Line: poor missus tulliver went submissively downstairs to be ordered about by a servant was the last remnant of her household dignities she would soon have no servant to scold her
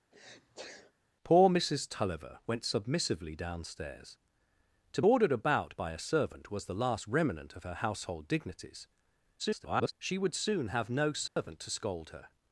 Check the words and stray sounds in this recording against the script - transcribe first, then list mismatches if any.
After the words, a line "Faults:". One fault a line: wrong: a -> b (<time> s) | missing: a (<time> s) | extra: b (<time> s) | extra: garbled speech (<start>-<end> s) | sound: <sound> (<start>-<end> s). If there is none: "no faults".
poor missus tulliver went submissively downstairs to ordered about by a servant was the last remnant of her household dignities [garbled] she would soon have no servant to scold her
Faults:
sound: sneeze (0.1-0.9 s)
missing: be (5.0 s)
extra: garbled speech (9.4-9.9 s)
sound: dropout (11.3-11.4 s)